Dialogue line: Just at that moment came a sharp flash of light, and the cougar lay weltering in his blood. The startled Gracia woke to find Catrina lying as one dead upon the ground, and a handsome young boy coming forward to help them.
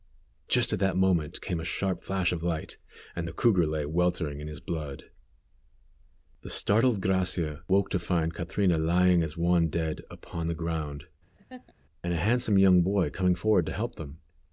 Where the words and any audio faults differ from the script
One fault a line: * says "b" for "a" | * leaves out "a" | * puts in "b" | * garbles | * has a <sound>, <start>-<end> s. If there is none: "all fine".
* has a laugh, 11.4-11.7 s